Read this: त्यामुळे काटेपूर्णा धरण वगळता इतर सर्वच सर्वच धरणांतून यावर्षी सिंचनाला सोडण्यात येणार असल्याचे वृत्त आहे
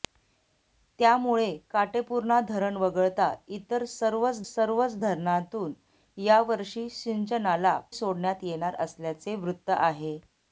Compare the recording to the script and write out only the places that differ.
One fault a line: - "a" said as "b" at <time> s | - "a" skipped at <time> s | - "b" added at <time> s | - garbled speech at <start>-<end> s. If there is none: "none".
none